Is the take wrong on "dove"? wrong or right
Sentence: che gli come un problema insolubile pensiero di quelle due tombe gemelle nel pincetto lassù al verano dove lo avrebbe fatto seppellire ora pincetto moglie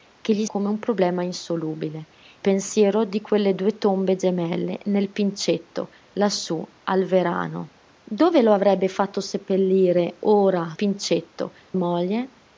right